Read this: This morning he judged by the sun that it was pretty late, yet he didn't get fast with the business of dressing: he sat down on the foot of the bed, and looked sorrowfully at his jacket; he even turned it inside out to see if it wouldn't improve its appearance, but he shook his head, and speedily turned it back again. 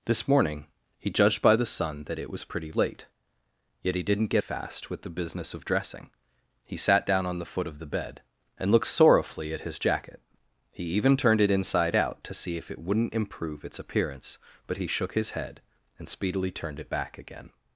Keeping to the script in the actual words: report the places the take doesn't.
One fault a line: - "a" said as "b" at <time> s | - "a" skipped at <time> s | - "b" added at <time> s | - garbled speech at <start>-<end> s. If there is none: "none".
none